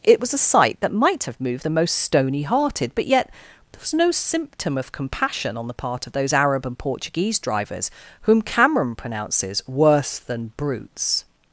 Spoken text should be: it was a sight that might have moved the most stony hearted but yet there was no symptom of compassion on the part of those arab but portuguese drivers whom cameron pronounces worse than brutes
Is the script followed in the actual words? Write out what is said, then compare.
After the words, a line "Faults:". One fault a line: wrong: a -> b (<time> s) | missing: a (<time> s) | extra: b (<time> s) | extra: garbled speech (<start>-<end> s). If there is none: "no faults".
it was a sight that might have moved the most stony hearted but yet there was no symptom of compassion on the part of those arab and portuguese drivers whom cameron pronounces worse than brutes
Faults:
wrong: but -> and (6.6 s)